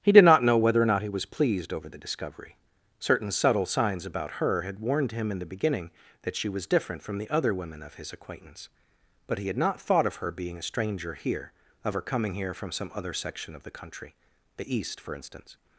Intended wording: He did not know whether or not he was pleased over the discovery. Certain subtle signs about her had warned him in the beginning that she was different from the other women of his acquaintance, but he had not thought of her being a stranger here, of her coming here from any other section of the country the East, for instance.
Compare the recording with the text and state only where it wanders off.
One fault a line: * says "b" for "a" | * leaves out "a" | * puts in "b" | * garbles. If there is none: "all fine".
* says "some" for "any"